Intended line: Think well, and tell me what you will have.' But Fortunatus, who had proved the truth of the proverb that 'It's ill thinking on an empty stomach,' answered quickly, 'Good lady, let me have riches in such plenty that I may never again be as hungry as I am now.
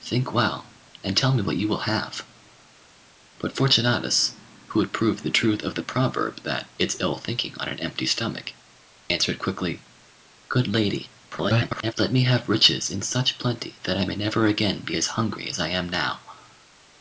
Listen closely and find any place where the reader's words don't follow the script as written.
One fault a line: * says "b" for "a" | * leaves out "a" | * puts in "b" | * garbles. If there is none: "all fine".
* garbles